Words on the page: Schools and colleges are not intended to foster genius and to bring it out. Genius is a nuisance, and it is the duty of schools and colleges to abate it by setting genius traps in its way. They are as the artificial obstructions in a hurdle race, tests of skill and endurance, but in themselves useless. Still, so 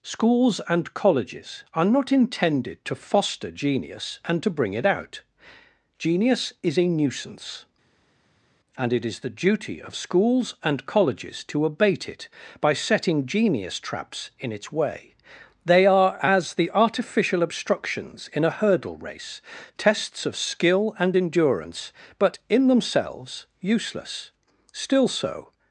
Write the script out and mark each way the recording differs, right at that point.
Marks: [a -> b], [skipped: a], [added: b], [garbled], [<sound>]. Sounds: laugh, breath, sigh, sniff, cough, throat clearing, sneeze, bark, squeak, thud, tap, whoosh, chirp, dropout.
Schools and colleges are not intended to foster genius and to bring it out. Genius is a nuisance, and it is the duty of schools and colleges to abate it by setting genius traps in its way. They are as the artificial obstructions in a hurdle race, tests of skill and endurance, but in themselves useless. Still, so